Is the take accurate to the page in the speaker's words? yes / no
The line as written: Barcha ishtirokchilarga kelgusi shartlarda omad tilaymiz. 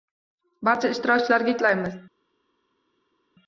no